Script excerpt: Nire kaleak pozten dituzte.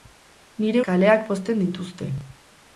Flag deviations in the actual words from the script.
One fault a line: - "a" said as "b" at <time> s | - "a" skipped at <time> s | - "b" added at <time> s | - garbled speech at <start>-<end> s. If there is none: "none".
none